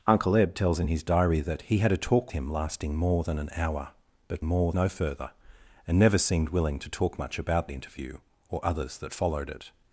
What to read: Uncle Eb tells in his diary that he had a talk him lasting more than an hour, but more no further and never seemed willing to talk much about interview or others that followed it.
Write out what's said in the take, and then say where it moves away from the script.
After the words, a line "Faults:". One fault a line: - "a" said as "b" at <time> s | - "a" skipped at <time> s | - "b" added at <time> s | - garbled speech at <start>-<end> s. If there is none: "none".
Uncle Eb tells in his diary that he had a talk him lasting more than an hour, but more no further and never seemed willing to talk much about interview or others that followed it.
Faults:
none